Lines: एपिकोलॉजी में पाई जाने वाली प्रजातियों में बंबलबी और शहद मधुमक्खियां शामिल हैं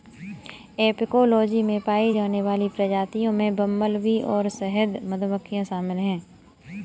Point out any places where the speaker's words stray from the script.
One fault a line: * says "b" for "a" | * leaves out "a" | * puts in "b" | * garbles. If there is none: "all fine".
all fine